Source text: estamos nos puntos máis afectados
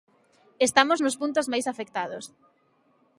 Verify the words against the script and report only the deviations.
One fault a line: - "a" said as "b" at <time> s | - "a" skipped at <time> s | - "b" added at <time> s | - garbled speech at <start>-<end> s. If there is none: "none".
none